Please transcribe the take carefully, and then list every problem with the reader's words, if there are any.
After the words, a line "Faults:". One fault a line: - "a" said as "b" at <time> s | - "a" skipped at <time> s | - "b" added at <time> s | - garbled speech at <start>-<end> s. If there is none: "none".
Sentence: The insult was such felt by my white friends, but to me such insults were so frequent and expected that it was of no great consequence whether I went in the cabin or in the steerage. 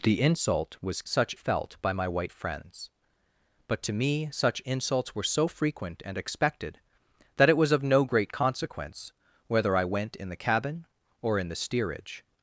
The insult was such felt by my white friends, but to me such insults were so frequent and expected that it was of no great consequence whether I went in the cabin or in the steerage.
Faults:
none